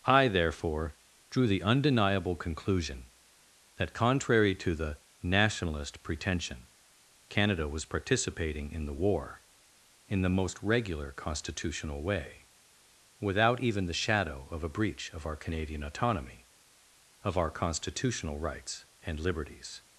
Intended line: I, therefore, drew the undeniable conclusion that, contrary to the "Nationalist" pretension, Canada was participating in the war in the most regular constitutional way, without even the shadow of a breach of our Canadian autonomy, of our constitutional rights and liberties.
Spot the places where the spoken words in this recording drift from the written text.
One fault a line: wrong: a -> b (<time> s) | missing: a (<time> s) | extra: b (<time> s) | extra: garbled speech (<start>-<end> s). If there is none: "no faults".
no faults